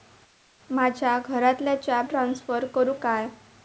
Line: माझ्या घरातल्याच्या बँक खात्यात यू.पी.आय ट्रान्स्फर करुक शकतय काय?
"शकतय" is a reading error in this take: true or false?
true